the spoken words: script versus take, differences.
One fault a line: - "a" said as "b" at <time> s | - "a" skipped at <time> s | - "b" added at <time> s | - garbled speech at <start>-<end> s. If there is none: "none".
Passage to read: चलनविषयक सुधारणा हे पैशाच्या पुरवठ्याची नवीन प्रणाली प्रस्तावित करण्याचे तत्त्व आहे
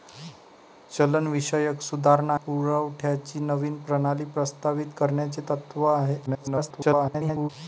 - "हे पैशाच्या" skipped at 2.4 s
- garbled speech at 6.3-7.5 s